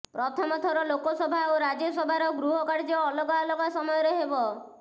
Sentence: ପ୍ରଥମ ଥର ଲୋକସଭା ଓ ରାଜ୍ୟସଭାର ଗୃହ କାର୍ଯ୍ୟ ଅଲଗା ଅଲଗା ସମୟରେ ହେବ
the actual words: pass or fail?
pass